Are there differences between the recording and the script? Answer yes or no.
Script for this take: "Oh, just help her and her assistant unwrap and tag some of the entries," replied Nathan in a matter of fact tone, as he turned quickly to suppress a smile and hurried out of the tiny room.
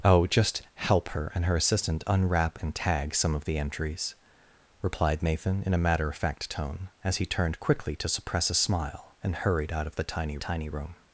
yes